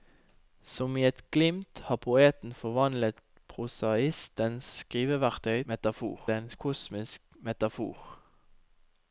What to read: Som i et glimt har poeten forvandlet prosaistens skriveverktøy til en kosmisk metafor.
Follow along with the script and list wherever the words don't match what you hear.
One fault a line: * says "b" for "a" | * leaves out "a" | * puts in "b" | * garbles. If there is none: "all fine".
* says "metafor" for "til"